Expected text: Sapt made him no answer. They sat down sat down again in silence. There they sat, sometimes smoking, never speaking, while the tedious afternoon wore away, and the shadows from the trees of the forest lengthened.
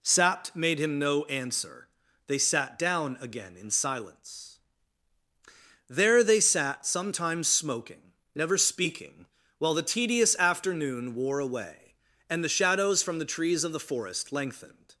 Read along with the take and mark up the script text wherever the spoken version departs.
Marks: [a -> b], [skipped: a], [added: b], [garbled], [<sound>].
Sapt made him no answer. They sat down [skipped: sat down] again in silence. There they sat, sometimes smoking, never speaking, while the tedious afternoon wore away, and the shadows from the trees of the forest lengthened.